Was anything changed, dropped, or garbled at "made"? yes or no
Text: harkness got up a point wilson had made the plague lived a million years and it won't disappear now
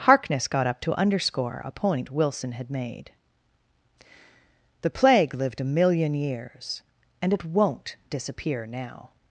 no